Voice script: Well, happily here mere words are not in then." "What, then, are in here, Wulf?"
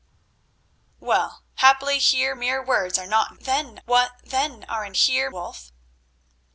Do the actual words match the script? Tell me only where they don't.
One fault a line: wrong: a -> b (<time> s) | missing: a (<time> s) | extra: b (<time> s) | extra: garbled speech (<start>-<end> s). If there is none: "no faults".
no faults